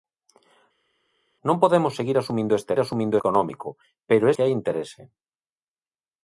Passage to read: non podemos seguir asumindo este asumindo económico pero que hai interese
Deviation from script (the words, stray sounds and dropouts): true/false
false